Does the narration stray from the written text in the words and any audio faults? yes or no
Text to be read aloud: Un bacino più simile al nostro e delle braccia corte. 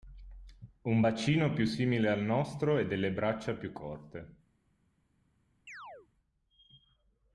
yes